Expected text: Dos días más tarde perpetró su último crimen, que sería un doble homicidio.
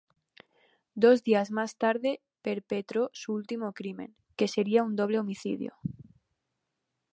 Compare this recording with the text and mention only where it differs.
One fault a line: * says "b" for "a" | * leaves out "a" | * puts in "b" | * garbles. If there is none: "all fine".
all fine